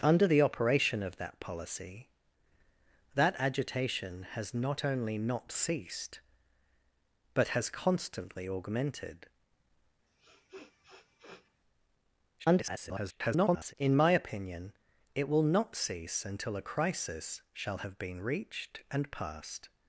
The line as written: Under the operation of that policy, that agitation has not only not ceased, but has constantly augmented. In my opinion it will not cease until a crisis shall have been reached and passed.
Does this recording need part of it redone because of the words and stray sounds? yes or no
yes